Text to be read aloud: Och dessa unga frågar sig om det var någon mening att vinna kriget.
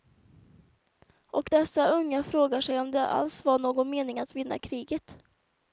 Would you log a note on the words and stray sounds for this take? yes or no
yes